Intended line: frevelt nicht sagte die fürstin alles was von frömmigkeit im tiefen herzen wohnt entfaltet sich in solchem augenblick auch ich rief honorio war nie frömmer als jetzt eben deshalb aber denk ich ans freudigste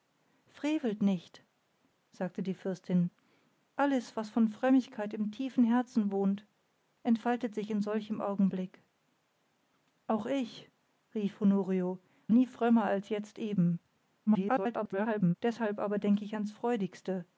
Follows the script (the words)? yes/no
no